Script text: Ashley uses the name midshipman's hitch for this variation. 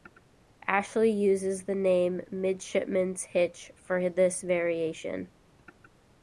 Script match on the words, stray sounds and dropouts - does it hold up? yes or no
yes